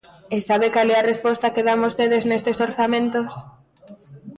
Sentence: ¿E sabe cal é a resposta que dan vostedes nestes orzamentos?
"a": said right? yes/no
yes